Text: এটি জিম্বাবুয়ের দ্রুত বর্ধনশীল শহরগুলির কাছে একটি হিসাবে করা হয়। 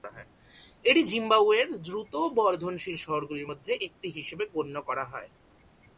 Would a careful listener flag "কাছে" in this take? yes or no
yes